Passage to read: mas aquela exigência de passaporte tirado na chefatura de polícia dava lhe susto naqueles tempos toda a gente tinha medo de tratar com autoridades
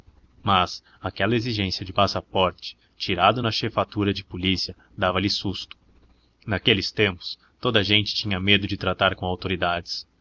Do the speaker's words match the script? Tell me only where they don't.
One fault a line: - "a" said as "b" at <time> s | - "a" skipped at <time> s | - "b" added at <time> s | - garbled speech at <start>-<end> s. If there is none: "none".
none